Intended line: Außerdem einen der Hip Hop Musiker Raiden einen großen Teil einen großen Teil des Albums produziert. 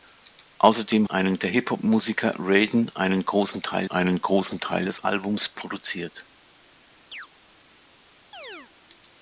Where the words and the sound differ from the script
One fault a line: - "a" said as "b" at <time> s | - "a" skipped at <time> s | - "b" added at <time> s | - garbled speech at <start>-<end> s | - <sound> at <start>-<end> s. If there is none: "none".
- chirp at 7.1-7.3 s
- chirp at 8.3-8.7 s